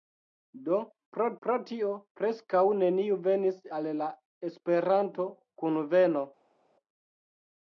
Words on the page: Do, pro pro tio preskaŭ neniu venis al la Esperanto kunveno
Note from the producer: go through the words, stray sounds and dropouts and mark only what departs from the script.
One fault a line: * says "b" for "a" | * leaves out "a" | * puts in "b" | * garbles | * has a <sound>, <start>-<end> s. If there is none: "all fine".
all fine